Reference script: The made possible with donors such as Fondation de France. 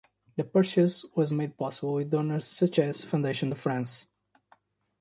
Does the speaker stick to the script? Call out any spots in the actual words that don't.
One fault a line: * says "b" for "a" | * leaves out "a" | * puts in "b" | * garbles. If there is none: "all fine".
* puts in "purchase was"